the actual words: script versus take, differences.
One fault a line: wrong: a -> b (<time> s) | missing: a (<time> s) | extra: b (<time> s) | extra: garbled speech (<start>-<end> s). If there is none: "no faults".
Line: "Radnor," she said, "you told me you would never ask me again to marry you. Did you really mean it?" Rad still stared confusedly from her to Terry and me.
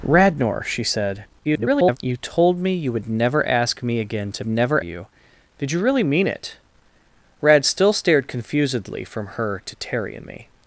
extra: garbled speech (1.4-2.0 s)
wrong: marry -> never (4.5 s)